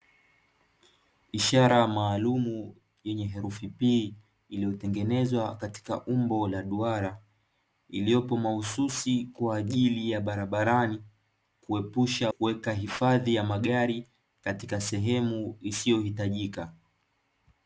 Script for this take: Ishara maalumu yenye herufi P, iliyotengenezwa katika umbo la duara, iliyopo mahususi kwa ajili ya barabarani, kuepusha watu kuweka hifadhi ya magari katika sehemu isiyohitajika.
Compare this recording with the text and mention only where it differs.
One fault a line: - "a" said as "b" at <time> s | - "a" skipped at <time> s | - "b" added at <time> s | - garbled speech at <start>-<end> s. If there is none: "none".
- "watu" skipped at 12.3 s